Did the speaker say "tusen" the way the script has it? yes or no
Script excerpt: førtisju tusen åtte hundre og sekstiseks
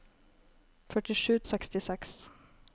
no